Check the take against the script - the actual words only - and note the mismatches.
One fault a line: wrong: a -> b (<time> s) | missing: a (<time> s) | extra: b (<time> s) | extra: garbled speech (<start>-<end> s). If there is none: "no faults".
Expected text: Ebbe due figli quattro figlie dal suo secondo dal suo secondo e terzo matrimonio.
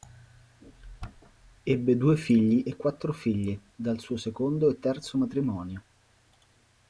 extra: e (2.6 s)
missing: dal suo secondo (4.7 s)